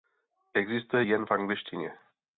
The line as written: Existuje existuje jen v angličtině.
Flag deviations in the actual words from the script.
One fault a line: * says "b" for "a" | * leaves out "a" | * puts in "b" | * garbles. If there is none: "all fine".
* leaves out "existuje"